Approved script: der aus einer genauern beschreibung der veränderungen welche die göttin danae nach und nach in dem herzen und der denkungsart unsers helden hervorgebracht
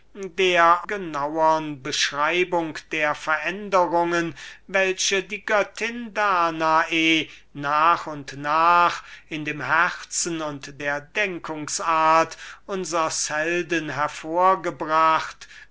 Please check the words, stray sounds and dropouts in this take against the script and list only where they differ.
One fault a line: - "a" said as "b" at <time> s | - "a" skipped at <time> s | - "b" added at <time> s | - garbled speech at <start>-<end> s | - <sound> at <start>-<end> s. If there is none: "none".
- "aus einer" skipped at 0.9 s